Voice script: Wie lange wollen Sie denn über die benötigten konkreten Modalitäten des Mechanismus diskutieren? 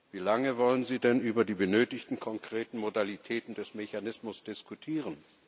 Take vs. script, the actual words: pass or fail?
pass